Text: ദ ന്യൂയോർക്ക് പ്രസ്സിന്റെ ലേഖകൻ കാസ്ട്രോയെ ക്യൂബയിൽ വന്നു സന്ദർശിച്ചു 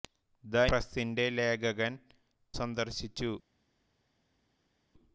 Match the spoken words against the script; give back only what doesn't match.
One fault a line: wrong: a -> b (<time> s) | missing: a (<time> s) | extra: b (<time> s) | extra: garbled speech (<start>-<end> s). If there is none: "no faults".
missing: ന്യൂയോർക്ക് (0.6 s)
missing: കാസ്ട്രോയെ ക്യൂബയിൽ വന്നു (1.9 s)